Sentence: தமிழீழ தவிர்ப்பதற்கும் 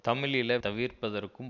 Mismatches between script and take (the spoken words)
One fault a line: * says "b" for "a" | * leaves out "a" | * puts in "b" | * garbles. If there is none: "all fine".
all fine